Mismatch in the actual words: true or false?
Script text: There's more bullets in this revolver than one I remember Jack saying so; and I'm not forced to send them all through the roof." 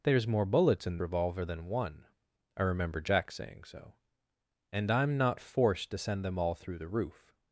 true